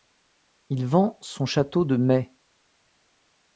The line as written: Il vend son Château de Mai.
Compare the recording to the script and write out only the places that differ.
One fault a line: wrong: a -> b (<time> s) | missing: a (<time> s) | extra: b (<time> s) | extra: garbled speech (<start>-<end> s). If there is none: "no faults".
no faults